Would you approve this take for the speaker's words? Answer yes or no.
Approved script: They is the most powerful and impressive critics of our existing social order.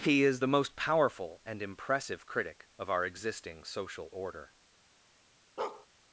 no